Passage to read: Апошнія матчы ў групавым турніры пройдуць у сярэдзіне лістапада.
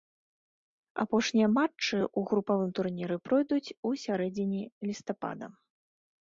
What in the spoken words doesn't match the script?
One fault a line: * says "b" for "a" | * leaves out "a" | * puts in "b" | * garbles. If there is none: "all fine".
all fine